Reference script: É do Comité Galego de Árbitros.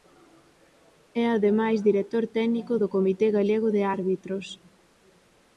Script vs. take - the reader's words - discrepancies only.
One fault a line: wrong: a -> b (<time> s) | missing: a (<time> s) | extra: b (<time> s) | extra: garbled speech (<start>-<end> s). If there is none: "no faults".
extra: ademais director técnico (1.4 s)